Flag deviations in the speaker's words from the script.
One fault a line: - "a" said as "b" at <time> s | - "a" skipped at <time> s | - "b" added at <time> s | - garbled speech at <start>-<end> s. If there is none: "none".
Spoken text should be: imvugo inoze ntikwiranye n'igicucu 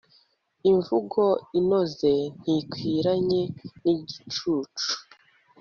none